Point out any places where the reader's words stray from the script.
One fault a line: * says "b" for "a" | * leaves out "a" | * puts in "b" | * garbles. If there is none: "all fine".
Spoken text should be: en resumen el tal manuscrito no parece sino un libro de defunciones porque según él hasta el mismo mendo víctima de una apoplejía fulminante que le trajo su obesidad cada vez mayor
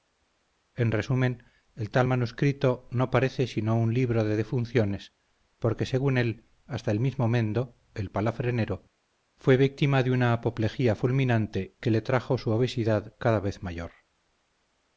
* puts in "el palafrenero fue"